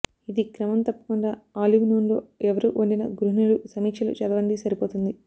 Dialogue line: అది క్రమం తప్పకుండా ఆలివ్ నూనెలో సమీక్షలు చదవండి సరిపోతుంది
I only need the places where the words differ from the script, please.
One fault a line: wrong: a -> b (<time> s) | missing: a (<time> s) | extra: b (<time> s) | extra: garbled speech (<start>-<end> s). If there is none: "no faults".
wrong: అది -> ఇది (0.3 s)
extra: ఎవరు వండిన గృహిణులు (2.5 s)